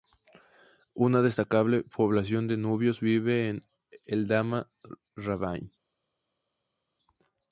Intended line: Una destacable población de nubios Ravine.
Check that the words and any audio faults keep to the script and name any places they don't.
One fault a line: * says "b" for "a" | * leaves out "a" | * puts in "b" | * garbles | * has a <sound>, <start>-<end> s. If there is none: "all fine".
* puts in "vive en Eldama"